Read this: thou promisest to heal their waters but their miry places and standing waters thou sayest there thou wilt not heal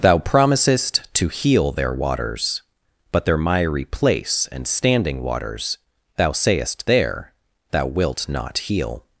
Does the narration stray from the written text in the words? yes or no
yes